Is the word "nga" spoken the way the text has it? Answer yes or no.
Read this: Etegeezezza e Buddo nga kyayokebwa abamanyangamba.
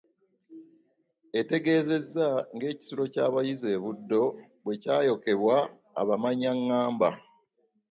no